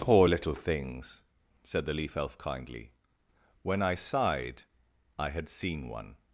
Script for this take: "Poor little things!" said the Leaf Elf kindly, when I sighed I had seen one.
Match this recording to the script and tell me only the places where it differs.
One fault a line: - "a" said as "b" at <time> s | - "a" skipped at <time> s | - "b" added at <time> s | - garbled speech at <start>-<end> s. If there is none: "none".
none